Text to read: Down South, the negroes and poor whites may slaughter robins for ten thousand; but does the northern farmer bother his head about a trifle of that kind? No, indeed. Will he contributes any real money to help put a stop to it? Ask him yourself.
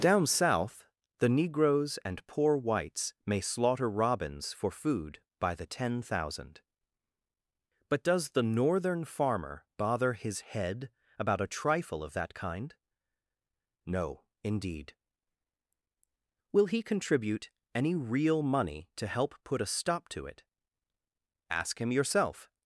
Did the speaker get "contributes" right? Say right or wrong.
wrong